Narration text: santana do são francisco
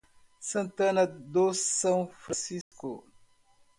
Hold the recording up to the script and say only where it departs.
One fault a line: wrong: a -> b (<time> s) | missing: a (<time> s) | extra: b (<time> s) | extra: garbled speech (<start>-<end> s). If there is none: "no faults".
no faults